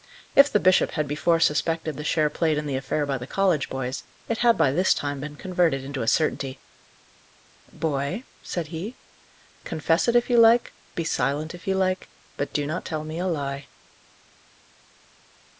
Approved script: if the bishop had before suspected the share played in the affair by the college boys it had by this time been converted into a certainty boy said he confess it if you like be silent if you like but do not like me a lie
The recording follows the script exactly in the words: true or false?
false